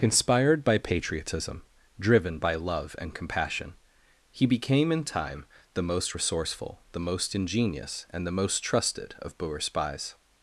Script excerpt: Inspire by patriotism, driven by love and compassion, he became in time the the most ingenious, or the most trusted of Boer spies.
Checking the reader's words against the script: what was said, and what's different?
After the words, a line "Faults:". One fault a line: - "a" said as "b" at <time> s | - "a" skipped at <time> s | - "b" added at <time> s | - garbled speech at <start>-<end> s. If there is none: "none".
Inspired by patriotism, driven by love and compassion, he became in time the most resourceful, the most ingenious, and the most trusted of Boer spies.
Faults:
- "Inspire" said as "Inspired" at 0.0 s
- "most resourceful" added at 5.8 s
- "or" said as "and" at 8.1 s